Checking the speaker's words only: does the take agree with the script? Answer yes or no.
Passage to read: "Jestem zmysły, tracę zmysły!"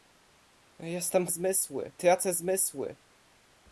yes